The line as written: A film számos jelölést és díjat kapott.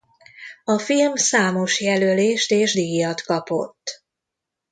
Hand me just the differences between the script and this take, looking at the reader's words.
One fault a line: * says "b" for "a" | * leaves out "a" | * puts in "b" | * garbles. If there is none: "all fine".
all fine